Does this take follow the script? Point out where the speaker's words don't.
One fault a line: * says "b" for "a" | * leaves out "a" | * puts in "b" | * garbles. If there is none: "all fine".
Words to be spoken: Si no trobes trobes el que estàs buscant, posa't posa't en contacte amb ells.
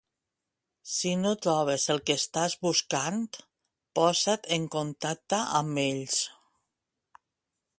* leaves out "trobes"
* leaves out "posa't"